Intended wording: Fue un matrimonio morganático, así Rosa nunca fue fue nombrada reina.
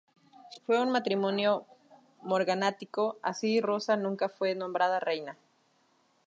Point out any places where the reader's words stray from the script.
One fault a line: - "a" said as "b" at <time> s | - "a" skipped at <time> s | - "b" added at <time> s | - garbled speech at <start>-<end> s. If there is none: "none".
- "fue" skipped at 4.5 s